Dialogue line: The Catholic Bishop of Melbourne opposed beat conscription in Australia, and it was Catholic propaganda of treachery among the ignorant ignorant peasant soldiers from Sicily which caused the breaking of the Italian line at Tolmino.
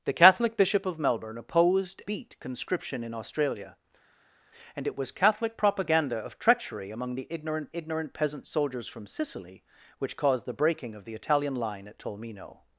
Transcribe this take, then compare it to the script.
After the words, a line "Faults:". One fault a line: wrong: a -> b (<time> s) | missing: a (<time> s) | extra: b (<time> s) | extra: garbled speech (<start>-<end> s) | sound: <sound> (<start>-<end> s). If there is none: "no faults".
The Catholic Bishop of Melbourne opposed beat conscription in Australia, and it was Catholic propaganda of treachery among the ignorant ignorant peasant soldiers from Sicily which caused the breaking of the Italian line at Tolmino.
Faults:
no faults